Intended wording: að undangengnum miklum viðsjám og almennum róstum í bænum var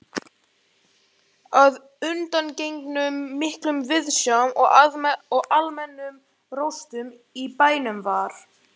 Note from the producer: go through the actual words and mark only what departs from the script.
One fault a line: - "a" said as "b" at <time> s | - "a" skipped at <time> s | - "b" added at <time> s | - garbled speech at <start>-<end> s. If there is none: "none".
none